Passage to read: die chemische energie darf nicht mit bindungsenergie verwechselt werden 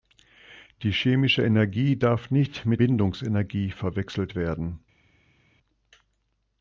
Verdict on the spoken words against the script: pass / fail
pass